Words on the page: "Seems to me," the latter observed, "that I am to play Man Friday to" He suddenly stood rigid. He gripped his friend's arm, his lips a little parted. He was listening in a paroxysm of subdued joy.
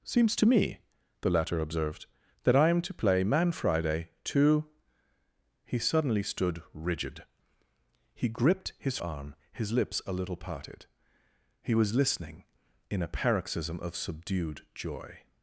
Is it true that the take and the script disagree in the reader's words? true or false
true